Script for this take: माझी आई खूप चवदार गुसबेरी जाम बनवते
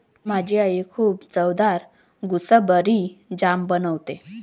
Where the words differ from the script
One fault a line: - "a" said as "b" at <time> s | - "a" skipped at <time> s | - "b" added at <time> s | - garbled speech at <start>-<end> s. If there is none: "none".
none